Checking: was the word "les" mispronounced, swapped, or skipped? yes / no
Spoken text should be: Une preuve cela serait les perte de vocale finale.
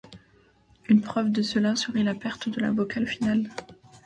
yes